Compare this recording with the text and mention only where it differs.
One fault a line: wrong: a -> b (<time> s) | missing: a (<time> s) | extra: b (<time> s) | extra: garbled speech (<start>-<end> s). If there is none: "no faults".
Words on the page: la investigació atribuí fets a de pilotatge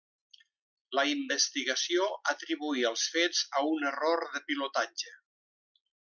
extra: els (2.9 s)
extra: un error (3.8 s)